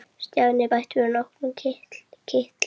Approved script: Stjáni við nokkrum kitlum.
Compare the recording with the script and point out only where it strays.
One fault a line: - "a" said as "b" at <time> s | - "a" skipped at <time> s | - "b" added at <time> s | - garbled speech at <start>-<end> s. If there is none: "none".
- "bætti" added at 0.7 s